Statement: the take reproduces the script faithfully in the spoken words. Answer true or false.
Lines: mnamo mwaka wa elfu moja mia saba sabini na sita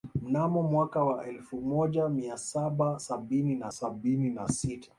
false